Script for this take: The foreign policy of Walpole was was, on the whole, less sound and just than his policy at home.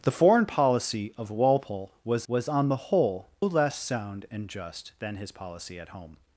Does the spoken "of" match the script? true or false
true